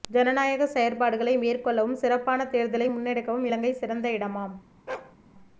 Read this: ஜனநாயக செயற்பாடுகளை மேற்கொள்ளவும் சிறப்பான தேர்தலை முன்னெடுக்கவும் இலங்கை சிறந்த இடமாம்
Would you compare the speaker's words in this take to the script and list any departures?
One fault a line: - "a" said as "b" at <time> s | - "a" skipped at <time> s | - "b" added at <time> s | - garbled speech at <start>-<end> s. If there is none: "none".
none